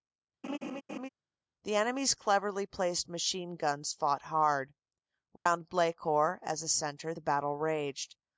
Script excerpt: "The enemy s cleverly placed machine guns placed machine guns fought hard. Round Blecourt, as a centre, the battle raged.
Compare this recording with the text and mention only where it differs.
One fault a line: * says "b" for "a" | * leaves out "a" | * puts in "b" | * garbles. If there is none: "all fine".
* leaves out "placed machine guns"